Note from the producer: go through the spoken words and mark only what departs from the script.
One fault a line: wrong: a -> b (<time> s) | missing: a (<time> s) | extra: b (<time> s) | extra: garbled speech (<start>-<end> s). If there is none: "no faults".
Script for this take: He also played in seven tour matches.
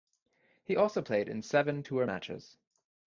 no faults